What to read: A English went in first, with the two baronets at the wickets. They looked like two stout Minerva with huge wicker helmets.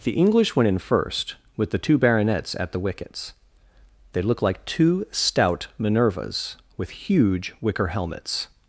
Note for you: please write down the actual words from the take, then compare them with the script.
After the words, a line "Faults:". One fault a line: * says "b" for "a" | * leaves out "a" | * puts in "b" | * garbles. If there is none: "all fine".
The English went in first, with the two baronets at the wickets. They looked like two stout Minervas with huge wicker helmets.
Faults:
* says "The" for "A"
* says "Minervas" for "Minerva"